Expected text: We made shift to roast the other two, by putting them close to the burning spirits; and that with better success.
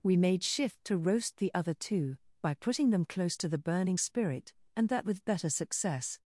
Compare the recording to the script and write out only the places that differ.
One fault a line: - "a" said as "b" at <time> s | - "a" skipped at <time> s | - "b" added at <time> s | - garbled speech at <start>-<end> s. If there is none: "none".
- "spirits" said as "spirit" at 4.0 s